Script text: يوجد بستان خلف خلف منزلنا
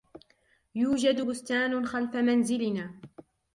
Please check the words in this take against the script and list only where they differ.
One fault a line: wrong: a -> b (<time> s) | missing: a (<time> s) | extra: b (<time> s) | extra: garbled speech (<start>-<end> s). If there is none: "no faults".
missing: خلف (2.1 s)